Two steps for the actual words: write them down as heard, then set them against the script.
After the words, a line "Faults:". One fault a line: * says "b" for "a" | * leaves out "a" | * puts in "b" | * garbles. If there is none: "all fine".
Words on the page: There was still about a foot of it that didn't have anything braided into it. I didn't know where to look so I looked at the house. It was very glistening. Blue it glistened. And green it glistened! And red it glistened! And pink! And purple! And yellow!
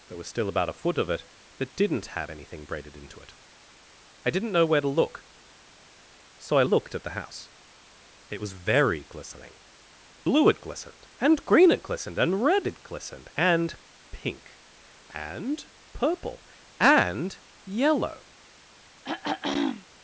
There was still about a foot of it that didn't have anything braided into it. I didn't know where to look so I looked at the house. It was very glistening. Blue it glistened. And green it glistened! And red it glistened! And pink! And purple! And yellow!
Faults:
all fine